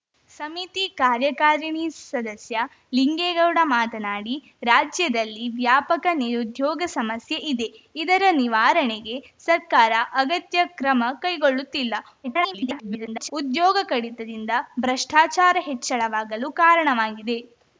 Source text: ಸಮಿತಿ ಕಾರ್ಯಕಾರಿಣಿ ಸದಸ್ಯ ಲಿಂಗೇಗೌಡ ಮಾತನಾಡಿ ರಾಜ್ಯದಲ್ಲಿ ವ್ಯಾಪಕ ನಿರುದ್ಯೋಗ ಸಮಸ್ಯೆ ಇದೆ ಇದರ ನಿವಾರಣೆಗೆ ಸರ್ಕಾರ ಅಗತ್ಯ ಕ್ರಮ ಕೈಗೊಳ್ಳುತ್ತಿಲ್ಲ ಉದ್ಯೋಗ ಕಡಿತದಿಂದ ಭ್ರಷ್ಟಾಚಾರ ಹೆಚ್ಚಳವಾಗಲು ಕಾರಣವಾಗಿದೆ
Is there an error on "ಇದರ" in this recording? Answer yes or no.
no